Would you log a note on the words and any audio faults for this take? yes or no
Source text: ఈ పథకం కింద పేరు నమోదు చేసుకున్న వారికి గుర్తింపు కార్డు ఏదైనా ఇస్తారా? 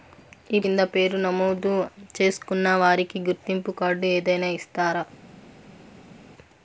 yes